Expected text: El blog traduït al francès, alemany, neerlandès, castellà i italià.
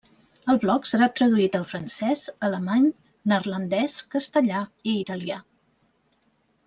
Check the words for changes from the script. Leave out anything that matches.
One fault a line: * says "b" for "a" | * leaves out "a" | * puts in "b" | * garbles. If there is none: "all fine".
* puts in "serà"